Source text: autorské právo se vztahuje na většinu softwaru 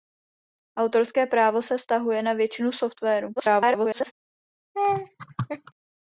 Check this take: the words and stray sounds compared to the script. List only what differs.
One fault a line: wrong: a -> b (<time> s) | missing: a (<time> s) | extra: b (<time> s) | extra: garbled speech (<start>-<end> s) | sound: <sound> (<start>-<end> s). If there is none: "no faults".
extra: garbled speech (3.4-4.1 s)
sound: laugh (4.7-5.7 s)